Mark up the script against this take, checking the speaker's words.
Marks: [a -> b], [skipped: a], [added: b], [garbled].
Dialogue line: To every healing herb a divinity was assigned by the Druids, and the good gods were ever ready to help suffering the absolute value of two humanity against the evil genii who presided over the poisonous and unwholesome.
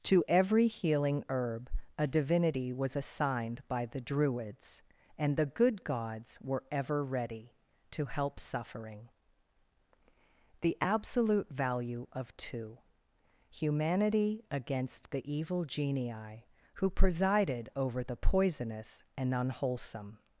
To every healing herb a divinity was assigned by the Druids, and the good gods were ever ready to help suffering the absolute value of two humanity against the evil genii who presided over the poisonous and unwholesome.